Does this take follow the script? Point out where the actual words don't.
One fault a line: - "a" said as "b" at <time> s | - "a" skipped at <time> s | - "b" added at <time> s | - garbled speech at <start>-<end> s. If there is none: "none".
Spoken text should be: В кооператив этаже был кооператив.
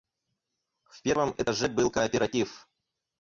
- "кооператив" said as "первом" at 1.0 s